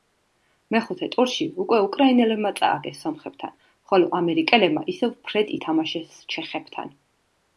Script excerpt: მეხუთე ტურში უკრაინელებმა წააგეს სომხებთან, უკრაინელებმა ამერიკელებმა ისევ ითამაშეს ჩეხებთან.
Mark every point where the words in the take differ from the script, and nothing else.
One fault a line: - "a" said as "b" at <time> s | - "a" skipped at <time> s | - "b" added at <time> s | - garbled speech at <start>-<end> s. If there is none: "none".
- "უკვე" added at 1.6 s
- "უკრაინელებმა" said as "ხოლო" at 3.9 s
- "ფრედ" added at 5.3 s